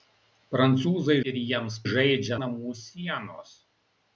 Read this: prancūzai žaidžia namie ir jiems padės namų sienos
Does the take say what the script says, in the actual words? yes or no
no